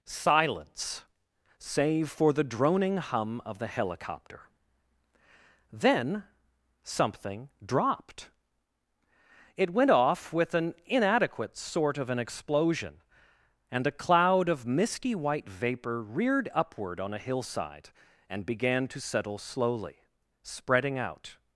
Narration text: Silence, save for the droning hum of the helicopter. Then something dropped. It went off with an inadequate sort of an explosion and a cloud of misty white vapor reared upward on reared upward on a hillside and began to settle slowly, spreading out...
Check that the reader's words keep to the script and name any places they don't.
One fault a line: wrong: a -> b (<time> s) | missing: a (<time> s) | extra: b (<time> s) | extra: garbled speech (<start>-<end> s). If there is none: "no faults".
missing: reared upward on (17.1 s)